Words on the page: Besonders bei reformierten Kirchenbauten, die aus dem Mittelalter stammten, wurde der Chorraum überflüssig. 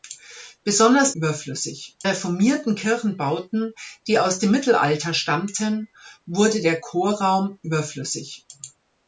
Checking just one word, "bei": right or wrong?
wrong